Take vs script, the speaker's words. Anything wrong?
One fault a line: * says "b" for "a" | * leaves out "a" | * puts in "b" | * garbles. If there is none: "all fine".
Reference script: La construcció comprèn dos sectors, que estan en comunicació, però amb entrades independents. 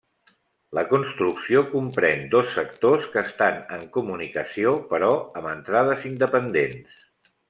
all fine